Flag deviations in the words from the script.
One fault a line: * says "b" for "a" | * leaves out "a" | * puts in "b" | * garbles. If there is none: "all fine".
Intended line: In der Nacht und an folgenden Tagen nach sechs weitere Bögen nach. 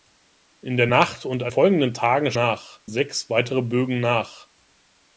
all fine